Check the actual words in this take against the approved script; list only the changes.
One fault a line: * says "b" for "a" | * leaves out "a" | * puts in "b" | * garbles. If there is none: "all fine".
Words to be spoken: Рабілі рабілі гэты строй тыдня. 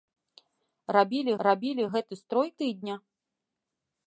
all fine